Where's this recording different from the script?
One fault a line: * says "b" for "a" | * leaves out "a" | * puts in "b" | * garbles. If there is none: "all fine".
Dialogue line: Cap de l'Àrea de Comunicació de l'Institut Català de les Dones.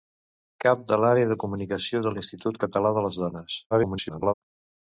* garbles